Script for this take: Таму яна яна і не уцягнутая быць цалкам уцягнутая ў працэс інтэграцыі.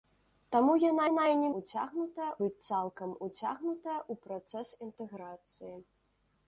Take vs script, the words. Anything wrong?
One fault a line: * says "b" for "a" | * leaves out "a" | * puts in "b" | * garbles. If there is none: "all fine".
all fine